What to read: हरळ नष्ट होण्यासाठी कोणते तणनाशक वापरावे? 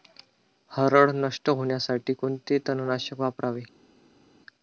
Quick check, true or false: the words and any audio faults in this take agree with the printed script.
true